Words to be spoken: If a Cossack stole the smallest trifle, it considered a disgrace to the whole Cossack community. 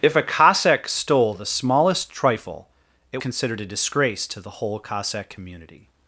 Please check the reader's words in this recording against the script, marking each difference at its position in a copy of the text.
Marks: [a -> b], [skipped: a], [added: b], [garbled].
If a Cossack stole the smallest trifle, it considered a disgrace to the whole Cossack community.